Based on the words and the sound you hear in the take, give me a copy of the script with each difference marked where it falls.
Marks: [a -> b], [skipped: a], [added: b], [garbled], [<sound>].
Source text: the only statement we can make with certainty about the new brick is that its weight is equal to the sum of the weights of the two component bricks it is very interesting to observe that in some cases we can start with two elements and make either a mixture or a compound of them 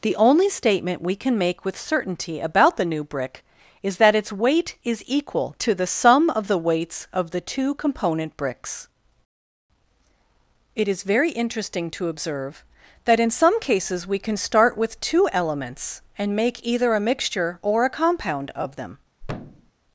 the only statement we can make with certainty about the new brick is that its weight is equal to the sum of the weights of the two component bricks it is very interesting to observe that in some cases we can start with two elements and make either a mixture or a compound of them [thud]